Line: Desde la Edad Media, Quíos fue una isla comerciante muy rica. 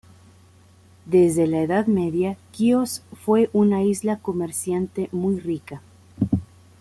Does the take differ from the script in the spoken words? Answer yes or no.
no